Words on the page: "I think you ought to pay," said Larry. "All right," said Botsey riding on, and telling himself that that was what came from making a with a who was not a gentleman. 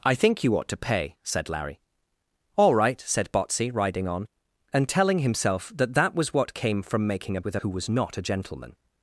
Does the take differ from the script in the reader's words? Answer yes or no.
no